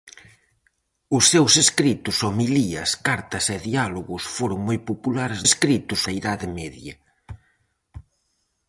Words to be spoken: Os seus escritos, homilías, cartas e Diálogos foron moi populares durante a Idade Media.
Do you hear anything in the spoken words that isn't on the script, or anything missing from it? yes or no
yes